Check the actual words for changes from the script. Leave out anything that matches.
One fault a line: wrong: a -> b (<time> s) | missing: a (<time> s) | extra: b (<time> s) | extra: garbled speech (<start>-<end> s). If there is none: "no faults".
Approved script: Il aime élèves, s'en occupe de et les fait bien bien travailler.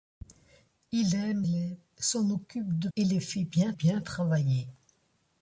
no faults